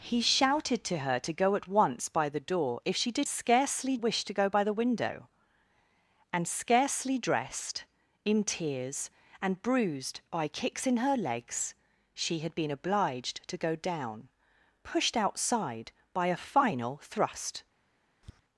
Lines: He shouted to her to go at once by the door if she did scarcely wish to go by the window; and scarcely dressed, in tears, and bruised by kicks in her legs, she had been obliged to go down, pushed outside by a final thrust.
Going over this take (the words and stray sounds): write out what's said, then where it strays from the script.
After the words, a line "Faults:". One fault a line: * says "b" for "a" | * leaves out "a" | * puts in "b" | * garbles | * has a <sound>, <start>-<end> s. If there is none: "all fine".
He shouted to her to go at once by the door if she did scarcely wish to go by the window; and scarcely dressed, in tears, and bruised by kicks in her legs, she had been obliged to go down, pushed outside by a final thrust.
Faults:
* has a tap, 18.2-18.4 s